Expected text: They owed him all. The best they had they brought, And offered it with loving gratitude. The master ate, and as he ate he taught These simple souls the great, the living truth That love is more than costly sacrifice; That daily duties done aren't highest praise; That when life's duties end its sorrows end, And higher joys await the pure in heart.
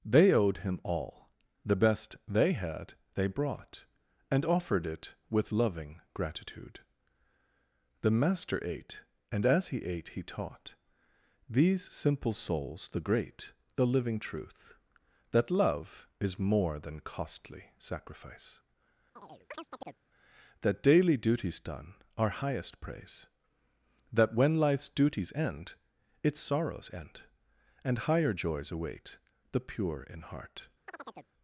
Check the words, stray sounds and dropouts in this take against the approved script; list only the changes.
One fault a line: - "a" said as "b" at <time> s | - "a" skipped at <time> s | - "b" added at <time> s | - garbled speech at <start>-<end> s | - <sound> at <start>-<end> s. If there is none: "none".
- chirp at 19.2-20.0 s
- "aren't" said as "are" at 22.2 s
- chirp at 30.9-31.3 s